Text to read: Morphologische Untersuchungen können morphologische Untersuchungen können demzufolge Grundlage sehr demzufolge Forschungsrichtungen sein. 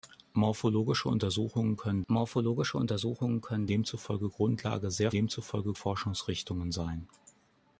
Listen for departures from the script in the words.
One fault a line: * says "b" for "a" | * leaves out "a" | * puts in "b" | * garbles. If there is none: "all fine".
all fine